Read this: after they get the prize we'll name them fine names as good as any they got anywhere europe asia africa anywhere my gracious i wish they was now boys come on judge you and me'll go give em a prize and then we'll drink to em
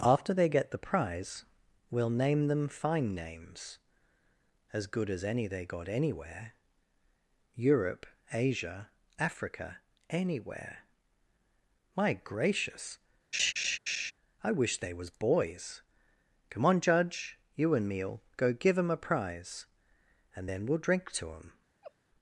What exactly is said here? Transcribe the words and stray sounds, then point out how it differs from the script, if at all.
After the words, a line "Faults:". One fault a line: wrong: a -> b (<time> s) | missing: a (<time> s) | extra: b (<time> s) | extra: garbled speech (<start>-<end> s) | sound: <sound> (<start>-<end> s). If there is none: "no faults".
after they get the prize we'll name them fine names as good as any they got anywhere europe asia africa anywhere my gracious i wish they was boys come on judge you and me'll go give em a prize and then we'll drink to em
Faults:
sound: laugh (13.3-14.1 s)
missing: now (15.1 s)
sound: laugh (21.8-21.9 s)